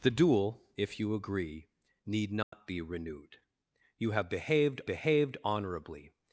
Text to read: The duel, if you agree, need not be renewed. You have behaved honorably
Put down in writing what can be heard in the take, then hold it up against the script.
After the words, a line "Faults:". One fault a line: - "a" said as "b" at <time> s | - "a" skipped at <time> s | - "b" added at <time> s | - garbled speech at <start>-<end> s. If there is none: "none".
The duel, if you agree, need not be renewed. You have behaved behaved honorably
Faults:
- "behaved" added at 4.9 s